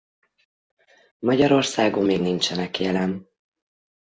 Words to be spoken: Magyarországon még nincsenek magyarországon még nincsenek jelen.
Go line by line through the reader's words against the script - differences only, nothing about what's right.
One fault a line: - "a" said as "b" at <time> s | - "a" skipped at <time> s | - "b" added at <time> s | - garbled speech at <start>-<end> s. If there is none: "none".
- "magyarországon még nincsenek" skipped at 2.8 s